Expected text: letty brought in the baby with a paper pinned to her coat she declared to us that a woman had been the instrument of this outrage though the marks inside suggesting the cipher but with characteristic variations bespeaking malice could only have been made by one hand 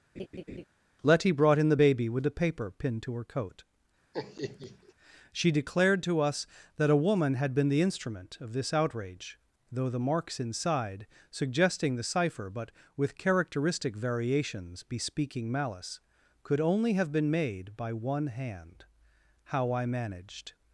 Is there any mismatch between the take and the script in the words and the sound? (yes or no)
yes